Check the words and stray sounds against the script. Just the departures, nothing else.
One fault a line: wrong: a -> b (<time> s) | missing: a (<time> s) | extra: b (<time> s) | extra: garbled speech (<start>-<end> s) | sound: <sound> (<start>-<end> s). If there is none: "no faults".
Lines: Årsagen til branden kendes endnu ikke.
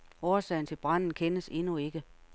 no faults